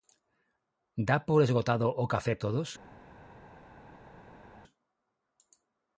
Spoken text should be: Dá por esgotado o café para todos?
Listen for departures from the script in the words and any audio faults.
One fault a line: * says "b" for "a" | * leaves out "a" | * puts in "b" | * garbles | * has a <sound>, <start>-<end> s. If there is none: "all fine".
* leaves out "para"